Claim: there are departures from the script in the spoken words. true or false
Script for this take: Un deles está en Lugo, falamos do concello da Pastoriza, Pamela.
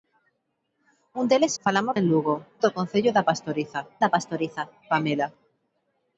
true